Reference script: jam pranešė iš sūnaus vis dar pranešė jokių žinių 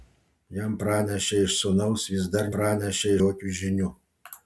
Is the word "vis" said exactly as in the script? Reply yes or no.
yes